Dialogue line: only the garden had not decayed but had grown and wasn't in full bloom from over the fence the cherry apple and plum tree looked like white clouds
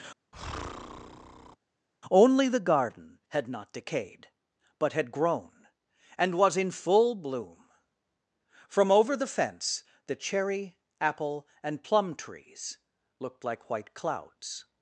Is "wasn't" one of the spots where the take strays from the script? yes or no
yes